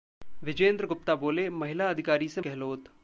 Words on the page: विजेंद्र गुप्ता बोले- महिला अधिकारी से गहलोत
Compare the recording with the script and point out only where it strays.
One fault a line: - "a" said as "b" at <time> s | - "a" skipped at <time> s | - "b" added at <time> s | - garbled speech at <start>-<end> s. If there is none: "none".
none